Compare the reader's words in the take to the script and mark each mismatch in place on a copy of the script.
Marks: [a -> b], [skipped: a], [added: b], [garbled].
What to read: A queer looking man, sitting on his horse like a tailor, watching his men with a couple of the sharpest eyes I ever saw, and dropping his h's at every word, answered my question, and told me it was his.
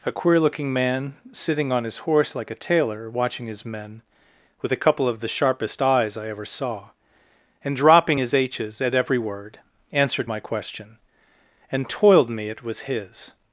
A queer looking man, sitting on his horse like a tailor, watching his men with a couple of the sharpest eyes I ever saw, and dropping his h's at every word, answered my question, and [told -> toiled] me it was his.